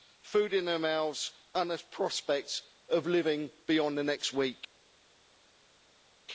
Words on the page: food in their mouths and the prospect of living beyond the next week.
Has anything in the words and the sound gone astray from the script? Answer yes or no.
no